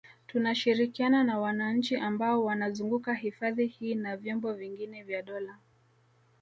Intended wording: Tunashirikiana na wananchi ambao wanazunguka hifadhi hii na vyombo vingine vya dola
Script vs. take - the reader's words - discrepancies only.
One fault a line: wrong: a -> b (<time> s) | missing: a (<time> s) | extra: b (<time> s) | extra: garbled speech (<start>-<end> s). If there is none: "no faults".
no faults